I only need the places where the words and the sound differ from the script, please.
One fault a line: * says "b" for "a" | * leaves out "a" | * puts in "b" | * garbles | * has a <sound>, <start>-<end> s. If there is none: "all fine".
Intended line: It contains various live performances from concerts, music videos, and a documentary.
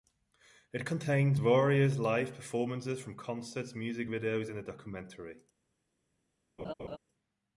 * has a laugh, 6.6-7.0 s